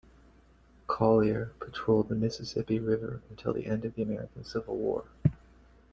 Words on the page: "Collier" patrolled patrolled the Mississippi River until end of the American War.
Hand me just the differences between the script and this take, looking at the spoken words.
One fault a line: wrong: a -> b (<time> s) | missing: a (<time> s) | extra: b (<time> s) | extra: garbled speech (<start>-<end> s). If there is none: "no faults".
missing: patrolled (2.1 s)
extra: the (3.5 s)
extra: Civil (4.4 s)